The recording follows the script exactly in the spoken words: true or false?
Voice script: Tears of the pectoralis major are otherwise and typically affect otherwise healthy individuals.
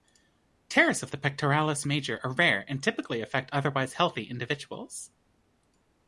false